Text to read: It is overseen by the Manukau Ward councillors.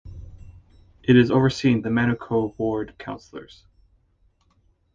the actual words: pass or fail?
fail